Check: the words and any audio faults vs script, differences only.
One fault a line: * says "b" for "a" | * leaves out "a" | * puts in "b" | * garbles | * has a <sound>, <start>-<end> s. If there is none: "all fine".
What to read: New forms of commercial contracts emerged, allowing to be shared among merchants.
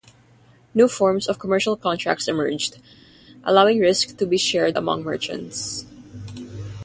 * puts in "risk"